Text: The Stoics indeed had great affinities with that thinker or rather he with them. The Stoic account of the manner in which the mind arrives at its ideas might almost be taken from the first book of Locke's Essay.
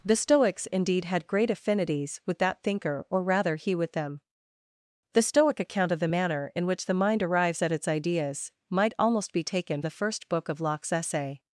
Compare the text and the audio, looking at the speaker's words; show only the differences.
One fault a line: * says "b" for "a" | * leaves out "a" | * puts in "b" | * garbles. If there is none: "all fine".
* leaves out "from"